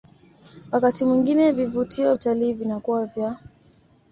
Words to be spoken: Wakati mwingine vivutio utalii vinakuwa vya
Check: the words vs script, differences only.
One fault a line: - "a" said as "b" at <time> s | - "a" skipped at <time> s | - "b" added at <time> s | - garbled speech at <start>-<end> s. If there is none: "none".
none